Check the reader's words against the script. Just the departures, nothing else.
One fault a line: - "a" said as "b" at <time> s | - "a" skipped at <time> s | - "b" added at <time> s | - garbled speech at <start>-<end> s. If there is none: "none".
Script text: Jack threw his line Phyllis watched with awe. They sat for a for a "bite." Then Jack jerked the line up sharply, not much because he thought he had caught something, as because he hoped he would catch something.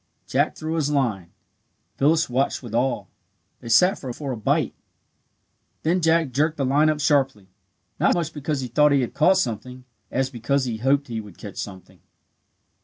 none